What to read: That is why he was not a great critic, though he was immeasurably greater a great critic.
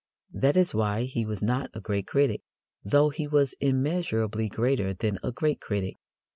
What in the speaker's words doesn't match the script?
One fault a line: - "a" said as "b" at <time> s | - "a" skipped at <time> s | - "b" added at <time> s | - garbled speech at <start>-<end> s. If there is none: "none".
- "than" added at 4.9 s